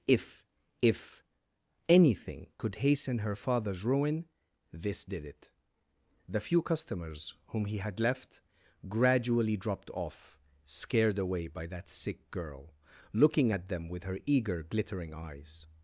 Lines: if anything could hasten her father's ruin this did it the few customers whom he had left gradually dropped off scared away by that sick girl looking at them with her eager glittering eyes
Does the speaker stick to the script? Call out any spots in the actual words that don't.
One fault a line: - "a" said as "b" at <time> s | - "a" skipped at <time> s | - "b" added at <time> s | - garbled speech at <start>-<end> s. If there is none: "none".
- "if" added at 0.8 s